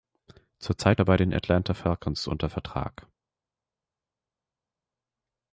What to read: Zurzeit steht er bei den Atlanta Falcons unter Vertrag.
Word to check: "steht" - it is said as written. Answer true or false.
false